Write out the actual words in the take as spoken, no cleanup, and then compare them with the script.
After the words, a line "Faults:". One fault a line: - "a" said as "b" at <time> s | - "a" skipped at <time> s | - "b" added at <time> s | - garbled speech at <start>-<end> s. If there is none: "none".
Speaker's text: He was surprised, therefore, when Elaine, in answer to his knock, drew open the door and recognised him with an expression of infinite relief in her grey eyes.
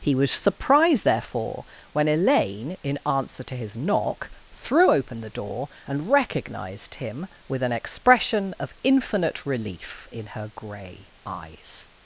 He was surprised, therefore, when Elaine, in answer to his knock, threw open the door and recognised him with an expression of infinite relief in her grey eyes.
Faults:
- "drew" said as "threw" at 4.5 s